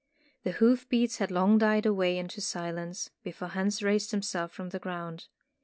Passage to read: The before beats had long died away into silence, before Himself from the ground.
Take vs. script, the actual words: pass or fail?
fail